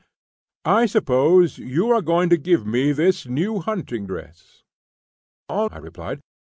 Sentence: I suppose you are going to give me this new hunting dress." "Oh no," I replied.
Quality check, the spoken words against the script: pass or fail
fail